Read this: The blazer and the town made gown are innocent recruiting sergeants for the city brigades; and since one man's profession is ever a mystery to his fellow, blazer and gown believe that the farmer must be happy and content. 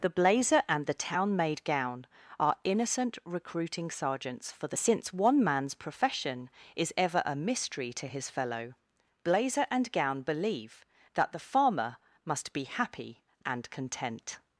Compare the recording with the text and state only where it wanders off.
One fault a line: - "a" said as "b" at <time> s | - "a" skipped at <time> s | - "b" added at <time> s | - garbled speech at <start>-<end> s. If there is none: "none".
- "city brigades and" skipped at 4.8 s